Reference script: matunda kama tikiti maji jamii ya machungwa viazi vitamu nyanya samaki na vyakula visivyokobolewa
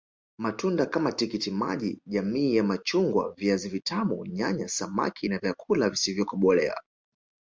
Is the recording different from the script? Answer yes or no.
no